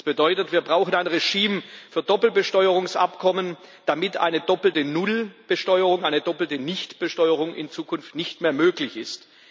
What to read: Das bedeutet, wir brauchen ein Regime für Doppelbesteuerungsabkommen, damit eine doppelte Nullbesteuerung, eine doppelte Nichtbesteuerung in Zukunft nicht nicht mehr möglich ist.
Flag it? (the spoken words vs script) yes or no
yes